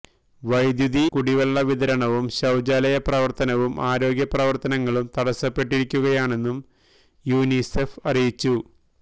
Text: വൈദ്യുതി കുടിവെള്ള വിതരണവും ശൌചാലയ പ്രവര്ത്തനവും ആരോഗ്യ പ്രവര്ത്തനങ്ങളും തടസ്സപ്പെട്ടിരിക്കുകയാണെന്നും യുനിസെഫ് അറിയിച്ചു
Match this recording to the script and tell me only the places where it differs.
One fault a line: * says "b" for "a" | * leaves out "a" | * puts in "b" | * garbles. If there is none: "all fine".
all fine